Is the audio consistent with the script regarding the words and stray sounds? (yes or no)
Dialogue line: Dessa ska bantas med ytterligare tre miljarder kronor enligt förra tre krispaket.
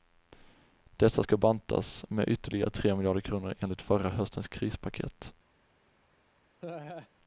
no